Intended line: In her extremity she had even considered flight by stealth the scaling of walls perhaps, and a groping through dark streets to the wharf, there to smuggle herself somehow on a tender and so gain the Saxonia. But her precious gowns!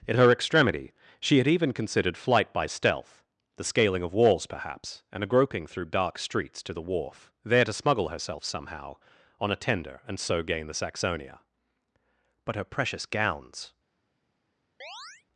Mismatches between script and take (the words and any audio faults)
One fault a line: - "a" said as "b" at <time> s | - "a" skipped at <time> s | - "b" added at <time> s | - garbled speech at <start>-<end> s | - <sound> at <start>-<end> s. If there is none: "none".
- chirp at 14.8-15.3 s